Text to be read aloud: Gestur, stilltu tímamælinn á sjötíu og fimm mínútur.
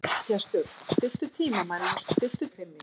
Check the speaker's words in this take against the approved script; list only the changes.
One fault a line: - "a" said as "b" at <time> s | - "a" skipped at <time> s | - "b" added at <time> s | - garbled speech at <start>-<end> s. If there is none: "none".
- "sjötíu" said as "stilltu" at 2.1 s